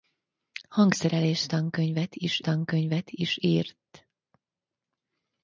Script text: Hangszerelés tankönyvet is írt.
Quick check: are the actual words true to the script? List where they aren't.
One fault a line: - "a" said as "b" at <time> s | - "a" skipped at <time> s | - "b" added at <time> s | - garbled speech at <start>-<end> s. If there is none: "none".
- "tankönyvet is" added at 2.4 s